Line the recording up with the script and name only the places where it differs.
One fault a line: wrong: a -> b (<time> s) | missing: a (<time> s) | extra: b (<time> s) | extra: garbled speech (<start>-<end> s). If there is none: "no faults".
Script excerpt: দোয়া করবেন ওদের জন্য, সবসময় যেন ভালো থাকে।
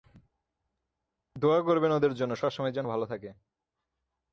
no faults